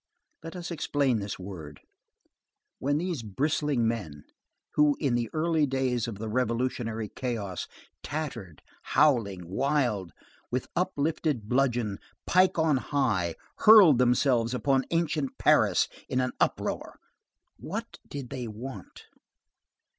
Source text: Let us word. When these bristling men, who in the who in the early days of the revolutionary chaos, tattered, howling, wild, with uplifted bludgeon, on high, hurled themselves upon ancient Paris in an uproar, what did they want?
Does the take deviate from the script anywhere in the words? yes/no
yes